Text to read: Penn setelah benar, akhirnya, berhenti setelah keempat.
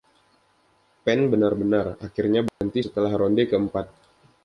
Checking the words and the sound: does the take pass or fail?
fail